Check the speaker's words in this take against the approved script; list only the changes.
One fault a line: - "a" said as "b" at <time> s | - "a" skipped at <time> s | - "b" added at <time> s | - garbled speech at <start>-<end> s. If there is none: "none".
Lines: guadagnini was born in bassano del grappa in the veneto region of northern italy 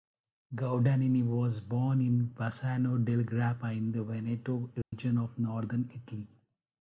none